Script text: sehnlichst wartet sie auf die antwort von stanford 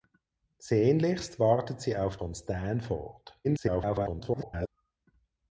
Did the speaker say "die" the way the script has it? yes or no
no